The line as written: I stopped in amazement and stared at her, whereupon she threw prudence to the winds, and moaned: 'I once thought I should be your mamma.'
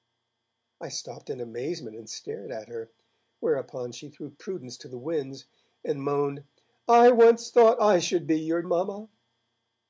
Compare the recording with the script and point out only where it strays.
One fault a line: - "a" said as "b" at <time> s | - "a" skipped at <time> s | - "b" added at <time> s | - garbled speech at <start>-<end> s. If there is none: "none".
none